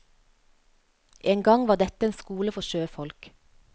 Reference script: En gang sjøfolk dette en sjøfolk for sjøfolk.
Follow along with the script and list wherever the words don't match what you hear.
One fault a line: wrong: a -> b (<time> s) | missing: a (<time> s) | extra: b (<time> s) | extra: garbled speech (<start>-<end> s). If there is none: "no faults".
wrong: sjøfolk -> var (1.7 s)
wrong: sjøfolk -> skole (2.2 s)